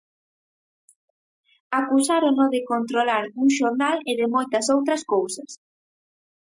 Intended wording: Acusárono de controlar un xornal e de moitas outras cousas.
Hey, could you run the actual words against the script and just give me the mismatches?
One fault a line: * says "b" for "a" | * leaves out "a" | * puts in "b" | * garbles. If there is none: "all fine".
all fine